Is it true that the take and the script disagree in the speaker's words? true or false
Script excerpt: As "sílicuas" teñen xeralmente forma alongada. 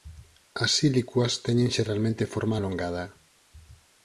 false